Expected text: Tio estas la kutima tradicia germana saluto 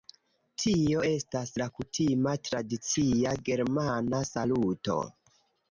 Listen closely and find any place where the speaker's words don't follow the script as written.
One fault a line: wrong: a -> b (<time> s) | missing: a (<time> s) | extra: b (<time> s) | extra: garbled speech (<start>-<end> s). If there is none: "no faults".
no faults